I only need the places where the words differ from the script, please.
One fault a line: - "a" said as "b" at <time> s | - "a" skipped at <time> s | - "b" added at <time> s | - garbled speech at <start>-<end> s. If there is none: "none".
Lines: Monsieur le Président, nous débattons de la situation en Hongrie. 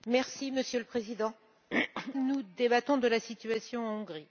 none